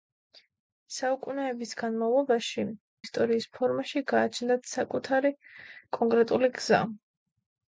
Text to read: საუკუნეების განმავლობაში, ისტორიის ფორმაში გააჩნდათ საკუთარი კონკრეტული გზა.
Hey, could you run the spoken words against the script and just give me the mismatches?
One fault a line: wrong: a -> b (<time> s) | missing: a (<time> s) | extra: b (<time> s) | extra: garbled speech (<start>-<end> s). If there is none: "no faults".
no faults